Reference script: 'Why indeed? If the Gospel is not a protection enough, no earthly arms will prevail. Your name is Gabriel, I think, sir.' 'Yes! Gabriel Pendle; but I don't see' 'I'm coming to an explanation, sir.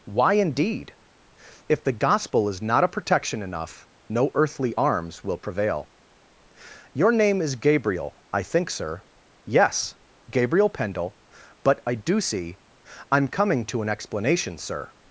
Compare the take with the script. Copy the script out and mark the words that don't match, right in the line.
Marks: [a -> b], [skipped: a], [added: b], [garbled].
'Why indeed? If the Gospel is not a protection enough, no earthly arms will prevail. Your name is Gabriel, I think, sir.' 'Yes! Gabriel Pendle; but I [don't -> do] see' 'I'm coming to an explanation, sir.